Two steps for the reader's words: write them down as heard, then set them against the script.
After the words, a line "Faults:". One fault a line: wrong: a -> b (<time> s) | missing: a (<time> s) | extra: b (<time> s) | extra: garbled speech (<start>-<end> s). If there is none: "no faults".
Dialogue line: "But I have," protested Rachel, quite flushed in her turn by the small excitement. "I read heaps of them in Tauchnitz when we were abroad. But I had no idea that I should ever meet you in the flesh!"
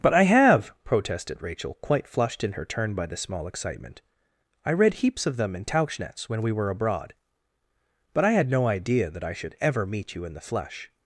"But I have," protested Rachel, quite flushed in her turn by the small excitement. "I read heaps of them in Tauchnitz when we were abroad. But I had no idea that I should ever meet you in the flesh!"
Faults:
no faults